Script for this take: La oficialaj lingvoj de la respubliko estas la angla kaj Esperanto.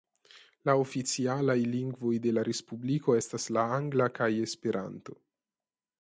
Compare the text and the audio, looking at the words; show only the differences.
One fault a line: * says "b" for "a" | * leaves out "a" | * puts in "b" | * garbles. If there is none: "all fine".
all fine